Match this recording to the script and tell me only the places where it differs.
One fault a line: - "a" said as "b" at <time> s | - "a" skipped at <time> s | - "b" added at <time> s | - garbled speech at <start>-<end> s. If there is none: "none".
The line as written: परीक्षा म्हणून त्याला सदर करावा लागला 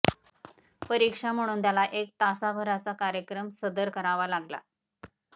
- "एक तासाभराचा कार्यक्रम" added at 1.8 s